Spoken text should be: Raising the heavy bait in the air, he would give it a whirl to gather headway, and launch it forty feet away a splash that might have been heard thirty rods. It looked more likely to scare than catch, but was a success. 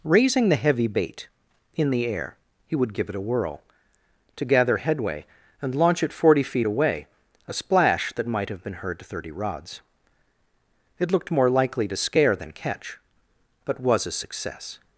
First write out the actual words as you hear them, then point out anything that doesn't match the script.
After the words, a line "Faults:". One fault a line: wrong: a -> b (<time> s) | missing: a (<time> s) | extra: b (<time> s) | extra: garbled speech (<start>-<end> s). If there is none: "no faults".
Raising the heavy bait in the air, he would give it a whirl to gather headway, and launch it forty feet away a splash that might have been heard thirty rods. It looked more likely to scare than catch, but was a success.
Faults:
no faults